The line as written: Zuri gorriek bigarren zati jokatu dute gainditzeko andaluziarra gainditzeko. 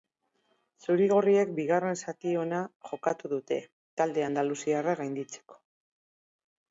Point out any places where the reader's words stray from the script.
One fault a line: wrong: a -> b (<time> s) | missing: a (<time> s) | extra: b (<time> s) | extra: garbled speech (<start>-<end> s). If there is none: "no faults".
extra: ona (2.4 s)
wrong: gainditzeko -> talde (4.0 s)